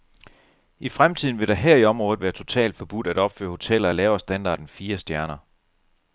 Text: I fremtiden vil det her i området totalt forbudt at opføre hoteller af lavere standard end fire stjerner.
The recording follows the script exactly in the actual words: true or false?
false